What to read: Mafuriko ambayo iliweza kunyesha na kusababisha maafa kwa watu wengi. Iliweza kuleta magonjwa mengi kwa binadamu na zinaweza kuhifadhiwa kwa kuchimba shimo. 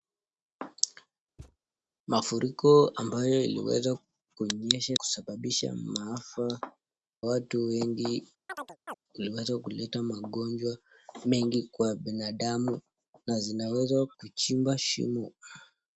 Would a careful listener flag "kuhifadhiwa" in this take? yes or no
yes